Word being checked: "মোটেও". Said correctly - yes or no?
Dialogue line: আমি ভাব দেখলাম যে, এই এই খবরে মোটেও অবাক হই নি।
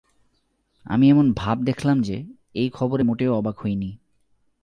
yes